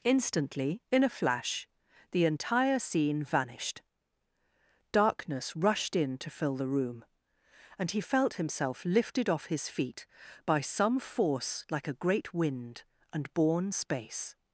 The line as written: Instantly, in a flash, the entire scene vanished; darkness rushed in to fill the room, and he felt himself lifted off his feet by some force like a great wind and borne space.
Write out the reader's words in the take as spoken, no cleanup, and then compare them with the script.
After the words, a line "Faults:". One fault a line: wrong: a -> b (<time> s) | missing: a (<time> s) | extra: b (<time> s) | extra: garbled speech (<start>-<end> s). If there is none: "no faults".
Instantly, in a flash, the entire scene vanished; darkness rushed in to fill the room, and he felt himself lifted off his feet by some force like a great wind and borne space.
Faults:
no faults